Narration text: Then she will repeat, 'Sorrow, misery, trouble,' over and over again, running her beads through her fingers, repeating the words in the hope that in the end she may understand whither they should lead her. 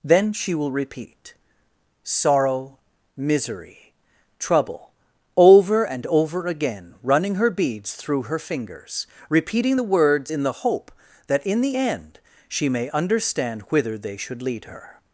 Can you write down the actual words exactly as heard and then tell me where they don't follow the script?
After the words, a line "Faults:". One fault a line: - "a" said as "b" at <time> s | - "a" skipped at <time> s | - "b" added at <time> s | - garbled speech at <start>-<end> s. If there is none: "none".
Then she will repeat, 'Sorrow, misery, trouble,' over and over again, running her beads through her fingers, repeating the words in the hope that in the end she may understand whither they should lead her.
Faults:
none